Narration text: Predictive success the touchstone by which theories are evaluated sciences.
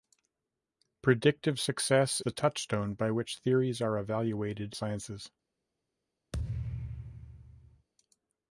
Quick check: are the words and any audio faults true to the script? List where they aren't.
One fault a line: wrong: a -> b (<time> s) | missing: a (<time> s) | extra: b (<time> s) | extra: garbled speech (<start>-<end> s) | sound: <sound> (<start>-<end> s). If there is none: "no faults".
sound: thud (6.3-7.9 s)